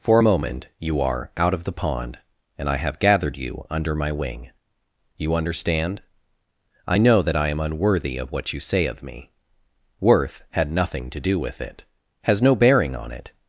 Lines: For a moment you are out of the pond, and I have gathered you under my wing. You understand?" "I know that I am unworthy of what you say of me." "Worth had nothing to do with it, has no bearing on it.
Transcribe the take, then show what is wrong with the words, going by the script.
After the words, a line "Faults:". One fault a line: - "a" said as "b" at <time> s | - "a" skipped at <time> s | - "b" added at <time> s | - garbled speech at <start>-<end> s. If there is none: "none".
For a moment you are out of the pond, and I have gathered you under my wing. You understand?" "I know that I am unworthy of what you say of me." "Worth had nothing to do with it, has no bearing on it.
Faults:
none